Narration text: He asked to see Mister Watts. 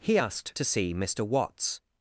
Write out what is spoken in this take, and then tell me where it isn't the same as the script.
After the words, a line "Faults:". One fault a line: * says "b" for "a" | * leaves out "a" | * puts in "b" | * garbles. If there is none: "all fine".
He asked to see Mister Watts.
Faults:
all fine